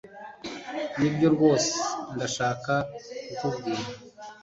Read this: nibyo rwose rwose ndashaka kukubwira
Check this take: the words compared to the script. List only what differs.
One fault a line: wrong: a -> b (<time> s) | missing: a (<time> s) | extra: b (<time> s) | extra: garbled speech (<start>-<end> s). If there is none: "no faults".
missing: rwose (1.7 s)